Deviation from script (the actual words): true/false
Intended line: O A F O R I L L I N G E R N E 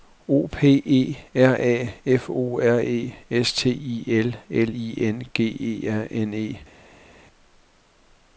true